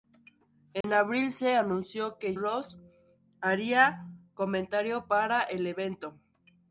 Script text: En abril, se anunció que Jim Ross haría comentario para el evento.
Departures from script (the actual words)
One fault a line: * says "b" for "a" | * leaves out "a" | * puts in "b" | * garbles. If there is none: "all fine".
* leaves out "Jim"